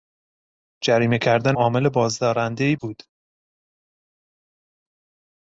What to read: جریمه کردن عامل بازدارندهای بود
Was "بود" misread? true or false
false